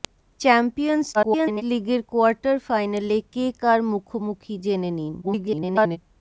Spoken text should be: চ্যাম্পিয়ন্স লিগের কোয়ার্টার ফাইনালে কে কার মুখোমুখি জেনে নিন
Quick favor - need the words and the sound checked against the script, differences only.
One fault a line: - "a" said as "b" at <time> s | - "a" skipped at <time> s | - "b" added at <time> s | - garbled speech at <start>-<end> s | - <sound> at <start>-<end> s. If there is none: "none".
- garbled speech at 1.1-1.6 s
- garbled speech at 5.2-6.0 s